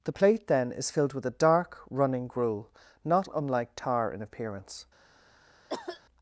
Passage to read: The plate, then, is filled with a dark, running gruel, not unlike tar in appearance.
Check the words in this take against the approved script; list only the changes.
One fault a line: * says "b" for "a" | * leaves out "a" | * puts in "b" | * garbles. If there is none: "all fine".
all fine